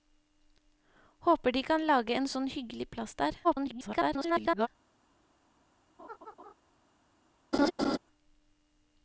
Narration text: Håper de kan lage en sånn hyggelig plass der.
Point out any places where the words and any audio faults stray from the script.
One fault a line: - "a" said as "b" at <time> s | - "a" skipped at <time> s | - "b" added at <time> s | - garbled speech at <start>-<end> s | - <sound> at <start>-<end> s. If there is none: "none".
- garbled speech at 3.4-4.7 s
- laugh at 6.0-6.5 s
- laugh at 7.5-8.0 s